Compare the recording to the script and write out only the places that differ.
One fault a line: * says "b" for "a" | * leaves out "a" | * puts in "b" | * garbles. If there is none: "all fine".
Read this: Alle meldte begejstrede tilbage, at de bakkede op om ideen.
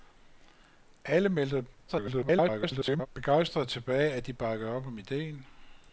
* garbles